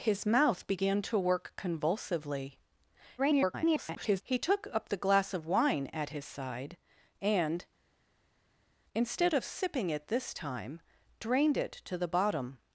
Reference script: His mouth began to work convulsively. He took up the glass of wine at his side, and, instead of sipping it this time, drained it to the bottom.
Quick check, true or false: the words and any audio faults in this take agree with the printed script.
false